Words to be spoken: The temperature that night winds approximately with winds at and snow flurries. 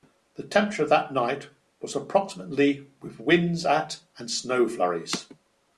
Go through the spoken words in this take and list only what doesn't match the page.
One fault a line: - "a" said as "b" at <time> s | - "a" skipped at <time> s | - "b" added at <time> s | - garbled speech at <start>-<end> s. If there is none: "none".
- "winds" said as "was" at 1.8 s